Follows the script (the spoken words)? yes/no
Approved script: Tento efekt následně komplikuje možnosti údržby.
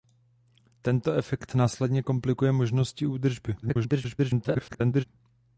no